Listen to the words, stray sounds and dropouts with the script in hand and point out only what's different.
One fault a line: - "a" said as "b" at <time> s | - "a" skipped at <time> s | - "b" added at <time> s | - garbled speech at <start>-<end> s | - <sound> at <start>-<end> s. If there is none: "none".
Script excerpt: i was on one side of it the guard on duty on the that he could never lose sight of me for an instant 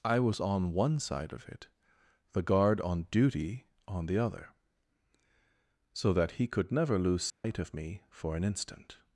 - "other so" added at 4.2 s
- dropout at 7.3-7.4 s